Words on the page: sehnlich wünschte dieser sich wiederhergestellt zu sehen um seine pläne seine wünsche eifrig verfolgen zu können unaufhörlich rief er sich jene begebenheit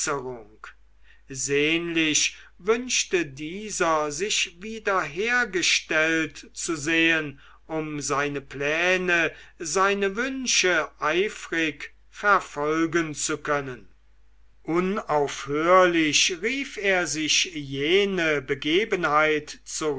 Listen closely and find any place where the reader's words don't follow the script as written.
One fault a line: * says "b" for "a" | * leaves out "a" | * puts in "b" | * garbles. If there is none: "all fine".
all fine